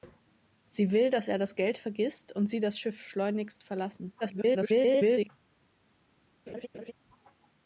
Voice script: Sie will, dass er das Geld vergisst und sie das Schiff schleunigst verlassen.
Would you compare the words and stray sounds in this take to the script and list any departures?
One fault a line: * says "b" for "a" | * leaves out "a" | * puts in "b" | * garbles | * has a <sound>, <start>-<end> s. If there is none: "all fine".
* garbles
* has a laugh, 6.5-6.9 s